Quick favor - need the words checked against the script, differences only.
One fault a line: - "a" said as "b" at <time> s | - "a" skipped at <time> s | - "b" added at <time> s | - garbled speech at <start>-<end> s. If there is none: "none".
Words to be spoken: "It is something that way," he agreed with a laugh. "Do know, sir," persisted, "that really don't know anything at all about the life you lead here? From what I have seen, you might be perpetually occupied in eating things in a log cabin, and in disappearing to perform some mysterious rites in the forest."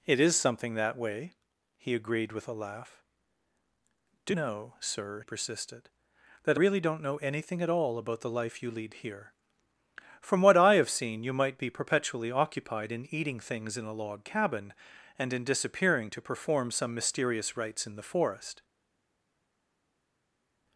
none